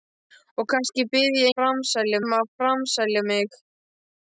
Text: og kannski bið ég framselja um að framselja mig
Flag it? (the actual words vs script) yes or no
no